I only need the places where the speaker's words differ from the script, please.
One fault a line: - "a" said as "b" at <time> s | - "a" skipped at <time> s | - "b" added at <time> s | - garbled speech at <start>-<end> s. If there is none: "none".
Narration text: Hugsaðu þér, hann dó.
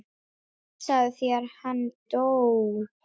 none